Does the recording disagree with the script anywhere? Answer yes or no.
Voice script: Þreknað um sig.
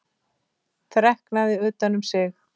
yes